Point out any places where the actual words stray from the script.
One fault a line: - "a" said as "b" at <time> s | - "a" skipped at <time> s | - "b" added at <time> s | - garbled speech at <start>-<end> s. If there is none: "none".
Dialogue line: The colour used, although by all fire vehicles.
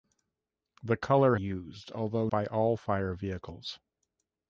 none